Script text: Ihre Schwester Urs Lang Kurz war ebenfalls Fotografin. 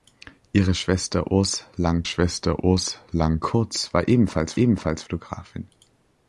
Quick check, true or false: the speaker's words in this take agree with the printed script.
false